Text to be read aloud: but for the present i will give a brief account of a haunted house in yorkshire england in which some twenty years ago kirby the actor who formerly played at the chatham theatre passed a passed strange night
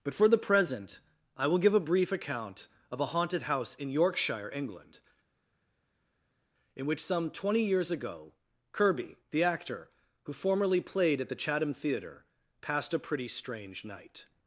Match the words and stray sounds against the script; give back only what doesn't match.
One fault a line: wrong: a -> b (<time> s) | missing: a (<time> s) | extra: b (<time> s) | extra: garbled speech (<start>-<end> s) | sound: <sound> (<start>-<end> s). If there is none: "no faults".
wrong: passed -> pretty (13.0 s)